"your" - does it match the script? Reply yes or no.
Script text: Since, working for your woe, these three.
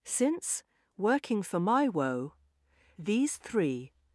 no